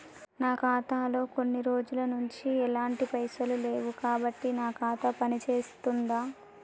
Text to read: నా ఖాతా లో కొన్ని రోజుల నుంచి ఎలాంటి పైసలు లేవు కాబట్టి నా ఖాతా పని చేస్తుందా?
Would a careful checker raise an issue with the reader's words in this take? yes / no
no